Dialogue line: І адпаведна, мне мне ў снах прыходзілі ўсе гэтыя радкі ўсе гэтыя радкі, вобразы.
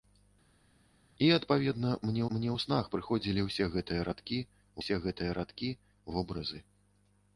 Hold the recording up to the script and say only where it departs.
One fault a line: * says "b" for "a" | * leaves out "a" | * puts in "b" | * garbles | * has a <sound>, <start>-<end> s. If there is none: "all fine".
all fine